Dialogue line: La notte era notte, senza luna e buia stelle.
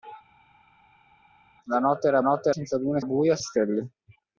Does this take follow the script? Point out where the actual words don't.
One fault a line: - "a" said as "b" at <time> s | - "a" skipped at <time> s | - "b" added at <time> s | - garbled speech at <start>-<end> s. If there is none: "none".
none